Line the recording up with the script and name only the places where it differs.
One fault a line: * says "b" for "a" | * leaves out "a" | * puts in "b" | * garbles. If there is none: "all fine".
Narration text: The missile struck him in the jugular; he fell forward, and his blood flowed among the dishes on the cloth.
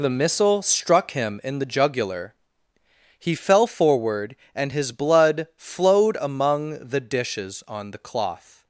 all fine